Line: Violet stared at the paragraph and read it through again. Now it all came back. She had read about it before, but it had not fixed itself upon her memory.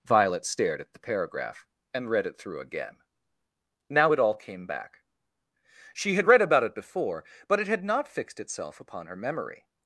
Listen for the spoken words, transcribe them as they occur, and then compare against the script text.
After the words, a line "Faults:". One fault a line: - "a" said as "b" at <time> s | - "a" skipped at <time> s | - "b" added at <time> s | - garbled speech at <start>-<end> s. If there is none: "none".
Violet stared at the paragraph and read it through again. Now it all came back. She had read about it before, but it had not fixed itself upon her memory.
Faults:
none